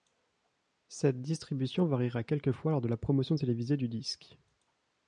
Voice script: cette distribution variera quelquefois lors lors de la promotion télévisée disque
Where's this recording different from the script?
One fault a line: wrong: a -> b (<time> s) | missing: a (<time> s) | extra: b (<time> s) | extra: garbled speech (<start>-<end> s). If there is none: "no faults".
missing: lors (2.8 s)
extra: du (3.8 s)